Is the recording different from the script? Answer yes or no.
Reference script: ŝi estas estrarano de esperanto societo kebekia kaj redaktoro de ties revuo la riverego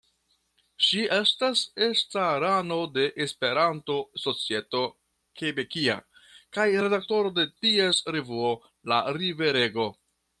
no